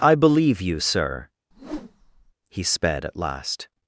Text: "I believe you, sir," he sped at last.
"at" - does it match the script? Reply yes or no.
yes